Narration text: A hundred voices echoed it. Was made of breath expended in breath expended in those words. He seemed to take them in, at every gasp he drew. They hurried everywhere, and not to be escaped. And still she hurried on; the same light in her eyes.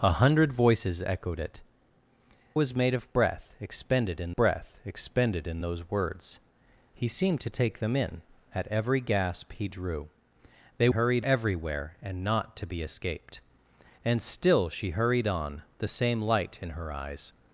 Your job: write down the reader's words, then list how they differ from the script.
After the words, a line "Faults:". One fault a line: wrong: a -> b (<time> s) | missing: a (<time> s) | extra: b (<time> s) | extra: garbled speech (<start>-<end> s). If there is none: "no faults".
A hundred voices echoed it. Was made of breath expended in breath expended in those words. He seemed to take them in, at every gasp he drew. They hurried everywhere, and not to be escaped. And still she hurried on; the same light in her eyes.
Faults:
no faults